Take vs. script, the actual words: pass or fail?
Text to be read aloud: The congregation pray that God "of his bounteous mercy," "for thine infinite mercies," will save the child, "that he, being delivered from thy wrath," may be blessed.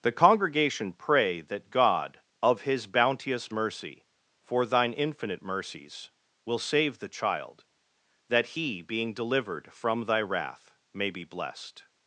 pass